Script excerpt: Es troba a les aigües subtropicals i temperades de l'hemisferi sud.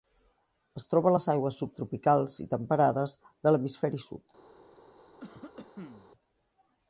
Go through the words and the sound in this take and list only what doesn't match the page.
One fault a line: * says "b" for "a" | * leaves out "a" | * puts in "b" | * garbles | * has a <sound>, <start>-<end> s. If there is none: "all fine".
* has a cough, 5.2-6.1 s